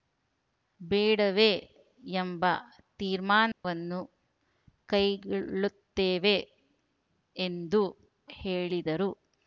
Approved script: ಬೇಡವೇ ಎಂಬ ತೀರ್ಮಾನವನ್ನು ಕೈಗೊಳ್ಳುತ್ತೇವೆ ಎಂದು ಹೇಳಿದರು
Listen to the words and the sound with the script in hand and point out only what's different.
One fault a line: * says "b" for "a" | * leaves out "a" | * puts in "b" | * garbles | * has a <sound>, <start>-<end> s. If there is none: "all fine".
* has a dropout, 3.5-3.6 s